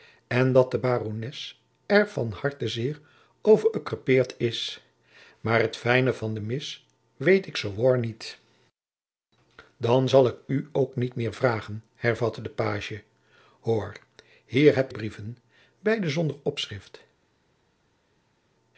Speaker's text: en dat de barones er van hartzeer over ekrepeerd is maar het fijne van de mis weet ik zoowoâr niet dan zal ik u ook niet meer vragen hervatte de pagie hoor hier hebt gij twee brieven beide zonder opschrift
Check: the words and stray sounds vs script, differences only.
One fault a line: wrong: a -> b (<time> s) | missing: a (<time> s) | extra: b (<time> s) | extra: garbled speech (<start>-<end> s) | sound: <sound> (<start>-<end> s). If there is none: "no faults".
missing: gij twee (14.9 s)